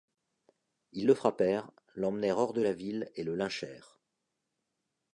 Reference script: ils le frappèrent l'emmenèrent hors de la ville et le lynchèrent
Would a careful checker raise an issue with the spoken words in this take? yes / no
no